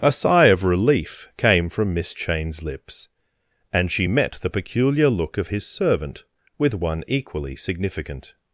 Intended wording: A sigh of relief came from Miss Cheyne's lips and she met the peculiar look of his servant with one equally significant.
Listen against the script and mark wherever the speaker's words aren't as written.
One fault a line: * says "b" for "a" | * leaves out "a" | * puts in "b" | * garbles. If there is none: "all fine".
all fine